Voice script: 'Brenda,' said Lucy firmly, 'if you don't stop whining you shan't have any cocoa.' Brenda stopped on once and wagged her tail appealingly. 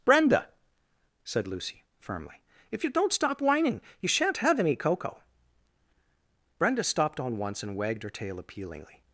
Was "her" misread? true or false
false